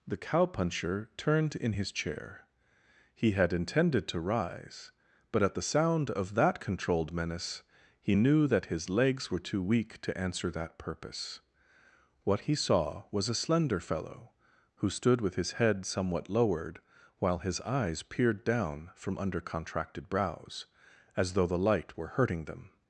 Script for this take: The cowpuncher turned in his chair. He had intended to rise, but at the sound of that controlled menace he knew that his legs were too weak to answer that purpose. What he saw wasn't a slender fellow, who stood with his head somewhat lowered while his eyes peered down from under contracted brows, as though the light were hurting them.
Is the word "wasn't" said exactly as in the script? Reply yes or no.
no